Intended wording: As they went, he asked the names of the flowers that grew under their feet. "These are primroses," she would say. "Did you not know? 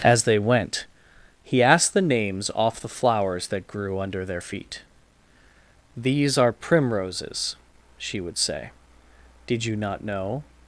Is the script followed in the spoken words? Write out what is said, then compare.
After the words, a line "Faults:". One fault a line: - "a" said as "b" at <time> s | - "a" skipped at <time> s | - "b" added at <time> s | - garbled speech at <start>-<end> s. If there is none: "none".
As they went, he asked the names off the flowers that grew under their feet. "These are primroses," she would say. "Did you not know?
Faults:
- "of" said as "off" at 2.5 s